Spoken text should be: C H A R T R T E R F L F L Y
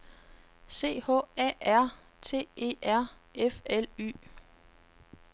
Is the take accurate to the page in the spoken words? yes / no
no